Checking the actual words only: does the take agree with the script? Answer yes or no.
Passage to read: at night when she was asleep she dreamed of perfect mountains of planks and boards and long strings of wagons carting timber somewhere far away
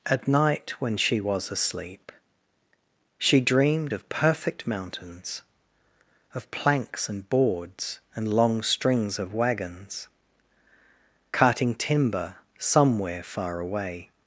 yes